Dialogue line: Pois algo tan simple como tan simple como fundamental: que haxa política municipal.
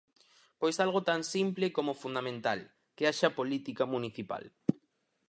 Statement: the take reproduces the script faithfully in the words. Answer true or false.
false